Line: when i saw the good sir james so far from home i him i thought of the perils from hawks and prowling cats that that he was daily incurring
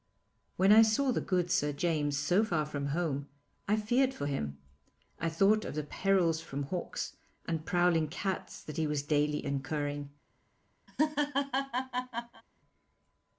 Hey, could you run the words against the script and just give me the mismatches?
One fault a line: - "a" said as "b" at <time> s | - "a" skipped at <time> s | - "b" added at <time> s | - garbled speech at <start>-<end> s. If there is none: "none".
- "feared for" added at 3.7 s
- "that" skipped at 8.8 s